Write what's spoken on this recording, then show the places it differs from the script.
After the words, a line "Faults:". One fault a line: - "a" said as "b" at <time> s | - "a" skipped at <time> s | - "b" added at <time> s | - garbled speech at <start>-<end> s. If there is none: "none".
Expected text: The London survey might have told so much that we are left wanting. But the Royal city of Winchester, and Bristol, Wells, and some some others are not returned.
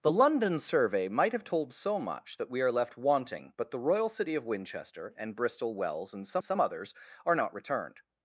The London survey might have told so much that we are left wanting. But the Royal city of Winchester, and Bristol, Wells, and some some others are not returned.
Faults:
none